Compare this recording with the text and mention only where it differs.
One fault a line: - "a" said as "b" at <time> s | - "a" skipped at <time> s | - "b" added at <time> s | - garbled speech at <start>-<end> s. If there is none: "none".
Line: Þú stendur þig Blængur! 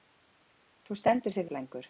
none